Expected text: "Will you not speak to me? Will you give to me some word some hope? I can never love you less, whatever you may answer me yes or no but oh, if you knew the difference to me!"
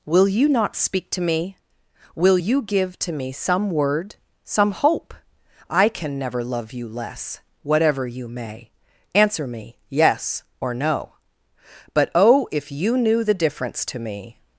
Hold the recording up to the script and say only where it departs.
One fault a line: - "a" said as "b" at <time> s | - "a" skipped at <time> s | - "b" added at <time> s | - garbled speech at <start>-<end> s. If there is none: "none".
none